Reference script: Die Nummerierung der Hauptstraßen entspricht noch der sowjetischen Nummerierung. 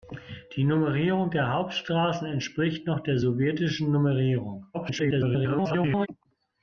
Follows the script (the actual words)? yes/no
no